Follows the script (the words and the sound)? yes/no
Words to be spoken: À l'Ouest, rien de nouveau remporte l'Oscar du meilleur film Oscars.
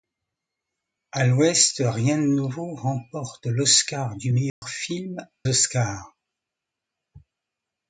no